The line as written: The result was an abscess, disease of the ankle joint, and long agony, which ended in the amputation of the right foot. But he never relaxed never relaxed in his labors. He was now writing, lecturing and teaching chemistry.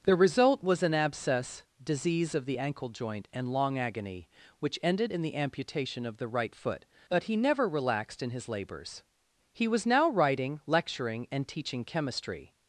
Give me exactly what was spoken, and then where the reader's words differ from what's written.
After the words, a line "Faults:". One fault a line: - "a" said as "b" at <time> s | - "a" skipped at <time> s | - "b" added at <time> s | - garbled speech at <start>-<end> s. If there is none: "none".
The result was an abscess, disease of the ankle joint, and long agony, which ended in the amputation of the right foot. But he never relaxed in his labors. He was now writing, lecturing and teaching chemistry.
Faults:
- "never relaxed" skipped at 8.2 s